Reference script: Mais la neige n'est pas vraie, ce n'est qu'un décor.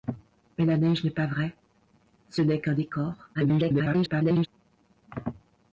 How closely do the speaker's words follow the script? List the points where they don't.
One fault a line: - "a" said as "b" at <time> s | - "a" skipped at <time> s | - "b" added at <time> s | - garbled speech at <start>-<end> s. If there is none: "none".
- garbled speech at 3.3-4.5 s